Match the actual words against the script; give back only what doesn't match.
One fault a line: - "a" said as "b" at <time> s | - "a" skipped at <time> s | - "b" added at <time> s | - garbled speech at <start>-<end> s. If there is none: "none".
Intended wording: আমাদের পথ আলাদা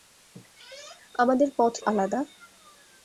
none